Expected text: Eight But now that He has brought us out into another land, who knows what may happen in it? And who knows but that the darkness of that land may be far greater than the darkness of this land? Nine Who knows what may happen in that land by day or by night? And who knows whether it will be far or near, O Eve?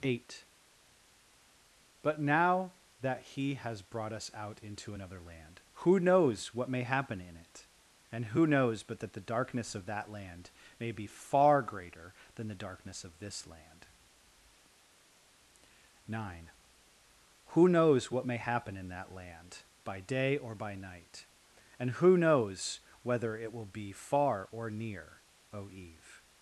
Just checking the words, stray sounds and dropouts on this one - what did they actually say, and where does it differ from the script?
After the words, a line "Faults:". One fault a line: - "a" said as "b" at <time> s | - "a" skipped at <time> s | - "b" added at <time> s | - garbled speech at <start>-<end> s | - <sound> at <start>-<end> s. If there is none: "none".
Eight But now that He has brought us out into another land, who knows what may happen in it? And who knows but that the darkness of that land may be far greater than the darkness of this land? Nine Who knows what may happen in that land by day or by night? And who knows whether it will be far or near, O Eve?
Faults:
none